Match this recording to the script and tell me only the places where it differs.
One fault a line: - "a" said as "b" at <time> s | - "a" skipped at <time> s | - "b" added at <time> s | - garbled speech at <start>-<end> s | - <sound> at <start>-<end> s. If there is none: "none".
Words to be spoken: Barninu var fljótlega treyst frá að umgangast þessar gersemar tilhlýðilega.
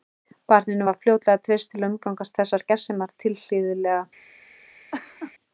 - "frá" said as "til" at 1.7 s
- laugh at 4.9-5.3 s